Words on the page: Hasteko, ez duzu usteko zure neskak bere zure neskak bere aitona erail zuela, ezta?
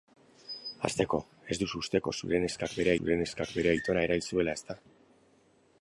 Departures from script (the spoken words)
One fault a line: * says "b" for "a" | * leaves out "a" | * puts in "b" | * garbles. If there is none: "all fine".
all fine